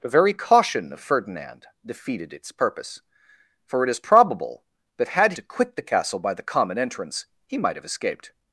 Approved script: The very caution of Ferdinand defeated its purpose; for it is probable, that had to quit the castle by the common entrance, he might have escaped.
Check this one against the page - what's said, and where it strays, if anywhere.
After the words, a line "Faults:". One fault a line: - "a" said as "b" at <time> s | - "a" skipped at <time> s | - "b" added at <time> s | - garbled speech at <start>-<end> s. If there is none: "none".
The very caution of Ferdinand defeated its purpose; for it is probable, that had to quit the castle by the common entrance, he might have escaped.
Faults:
none